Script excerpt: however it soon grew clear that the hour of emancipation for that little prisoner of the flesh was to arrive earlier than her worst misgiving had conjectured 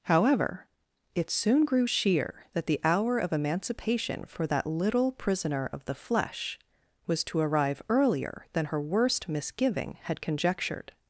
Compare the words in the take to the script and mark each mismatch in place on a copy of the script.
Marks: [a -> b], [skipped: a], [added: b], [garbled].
however it soon grew [clear -> sheer] that the hour of emancipation for that little prisoner of the flesh was to arrive earlier than her worst misgiving had conjectured